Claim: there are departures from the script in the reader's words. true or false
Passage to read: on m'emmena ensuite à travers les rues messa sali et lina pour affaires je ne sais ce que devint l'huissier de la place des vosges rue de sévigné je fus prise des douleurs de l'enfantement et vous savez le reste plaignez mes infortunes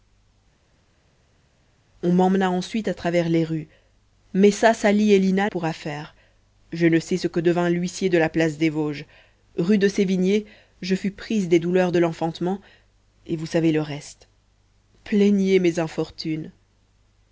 false